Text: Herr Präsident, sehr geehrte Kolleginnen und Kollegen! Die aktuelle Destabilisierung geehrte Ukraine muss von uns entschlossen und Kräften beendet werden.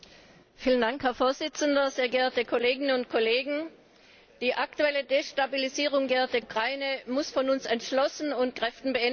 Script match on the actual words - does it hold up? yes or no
yes